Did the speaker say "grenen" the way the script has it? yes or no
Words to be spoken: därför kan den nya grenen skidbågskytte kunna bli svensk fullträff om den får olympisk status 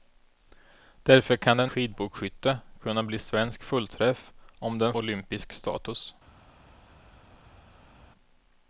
no